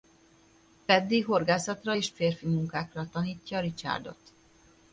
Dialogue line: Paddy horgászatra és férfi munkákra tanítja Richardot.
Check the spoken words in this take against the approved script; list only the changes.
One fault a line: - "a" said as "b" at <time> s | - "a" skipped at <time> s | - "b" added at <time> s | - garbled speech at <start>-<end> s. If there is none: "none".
none